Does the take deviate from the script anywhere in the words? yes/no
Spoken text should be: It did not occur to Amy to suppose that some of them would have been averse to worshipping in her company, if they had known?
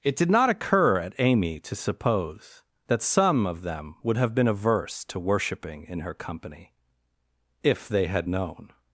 yes